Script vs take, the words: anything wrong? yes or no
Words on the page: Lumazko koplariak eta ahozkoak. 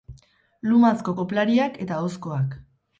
no